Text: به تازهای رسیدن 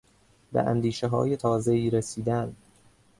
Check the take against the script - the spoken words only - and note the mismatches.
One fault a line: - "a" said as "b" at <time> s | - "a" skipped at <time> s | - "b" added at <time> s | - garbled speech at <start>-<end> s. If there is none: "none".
- "اندیشههای" added at 0.6 s